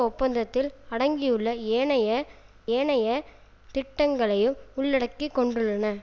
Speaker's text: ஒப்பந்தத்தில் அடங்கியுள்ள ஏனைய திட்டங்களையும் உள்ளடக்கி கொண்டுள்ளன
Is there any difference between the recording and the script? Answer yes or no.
yes